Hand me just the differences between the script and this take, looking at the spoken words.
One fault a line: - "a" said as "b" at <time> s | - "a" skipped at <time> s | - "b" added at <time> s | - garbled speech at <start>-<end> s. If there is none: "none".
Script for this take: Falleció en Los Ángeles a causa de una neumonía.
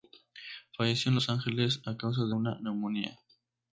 none